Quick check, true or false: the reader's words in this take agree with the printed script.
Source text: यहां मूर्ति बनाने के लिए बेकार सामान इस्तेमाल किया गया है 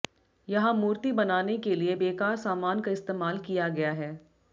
false